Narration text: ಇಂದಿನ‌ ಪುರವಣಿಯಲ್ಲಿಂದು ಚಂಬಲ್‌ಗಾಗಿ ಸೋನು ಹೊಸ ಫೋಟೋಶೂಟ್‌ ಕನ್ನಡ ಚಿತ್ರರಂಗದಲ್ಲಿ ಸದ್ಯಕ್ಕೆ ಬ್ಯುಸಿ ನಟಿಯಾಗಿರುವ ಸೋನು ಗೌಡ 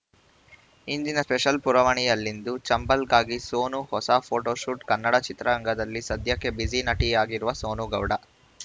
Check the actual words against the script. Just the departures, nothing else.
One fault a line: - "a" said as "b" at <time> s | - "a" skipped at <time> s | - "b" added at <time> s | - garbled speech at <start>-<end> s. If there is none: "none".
- "ಸ್ಪೆಷಲ್" added at 1.2 s